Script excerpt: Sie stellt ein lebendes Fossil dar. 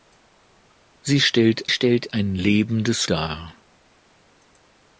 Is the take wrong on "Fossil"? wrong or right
wrong